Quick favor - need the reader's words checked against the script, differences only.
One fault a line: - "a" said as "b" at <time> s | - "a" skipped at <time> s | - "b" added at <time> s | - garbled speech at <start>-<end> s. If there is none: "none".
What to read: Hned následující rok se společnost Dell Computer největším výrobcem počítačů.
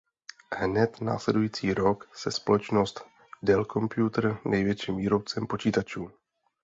none